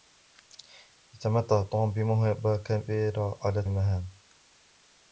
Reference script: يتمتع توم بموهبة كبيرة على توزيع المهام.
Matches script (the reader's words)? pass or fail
fail